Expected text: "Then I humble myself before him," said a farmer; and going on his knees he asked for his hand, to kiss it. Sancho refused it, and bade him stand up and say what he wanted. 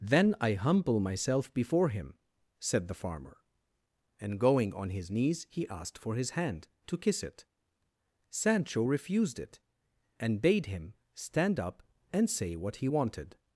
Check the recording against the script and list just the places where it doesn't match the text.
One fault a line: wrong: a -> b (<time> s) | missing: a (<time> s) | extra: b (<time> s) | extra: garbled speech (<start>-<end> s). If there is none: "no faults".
wrong: a -> the (2.9 s)